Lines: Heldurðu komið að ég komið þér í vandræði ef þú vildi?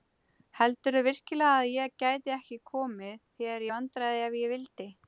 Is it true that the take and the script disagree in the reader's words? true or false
true